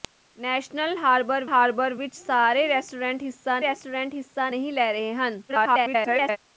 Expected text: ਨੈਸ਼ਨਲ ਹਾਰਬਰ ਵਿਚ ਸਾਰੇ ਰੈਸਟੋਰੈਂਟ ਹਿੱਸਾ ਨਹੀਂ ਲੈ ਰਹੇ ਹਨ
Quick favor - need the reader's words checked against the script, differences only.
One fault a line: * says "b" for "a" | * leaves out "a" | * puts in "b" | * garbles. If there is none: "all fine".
* puts in "ਹਾਰਬਰ"
* puts in "ਰੈਸਟੋਰੈਂਟ ਹਿੱਸਾ"
* garbles